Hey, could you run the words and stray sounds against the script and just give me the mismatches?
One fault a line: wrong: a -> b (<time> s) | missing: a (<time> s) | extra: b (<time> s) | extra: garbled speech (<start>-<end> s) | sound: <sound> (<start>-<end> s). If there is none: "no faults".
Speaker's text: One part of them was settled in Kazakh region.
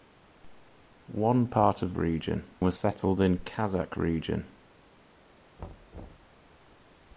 wrong: them -> region (1.9 s)
sound: thud (5.6-6.4 s)